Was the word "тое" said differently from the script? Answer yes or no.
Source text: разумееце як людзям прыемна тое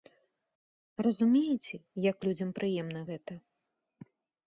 yes